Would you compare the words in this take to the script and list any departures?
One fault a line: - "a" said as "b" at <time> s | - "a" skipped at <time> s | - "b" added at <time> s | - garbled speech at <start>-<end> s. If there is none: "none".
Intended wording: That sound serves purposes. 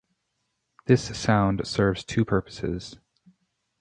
- "That" said as "This" at 0.9 s
- "two" added at 2.0 s